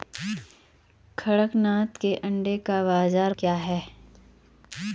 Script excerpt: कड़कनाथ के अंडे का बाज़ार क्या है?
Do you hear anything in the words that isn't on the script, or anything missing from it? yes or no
no